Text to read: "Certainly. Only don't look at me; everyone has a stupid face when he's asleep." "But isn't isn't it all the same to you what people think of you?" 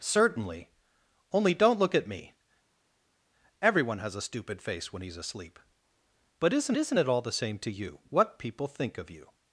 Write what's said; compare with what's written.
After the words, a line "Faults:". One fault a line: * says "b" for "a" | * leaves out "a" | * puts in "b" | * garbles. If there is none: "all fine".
"Certainly. Only don't look at me; everyone has a stupid face when he's asleep." "But isn't isn't it all the same to you what people think of you?"
Faults:
all fine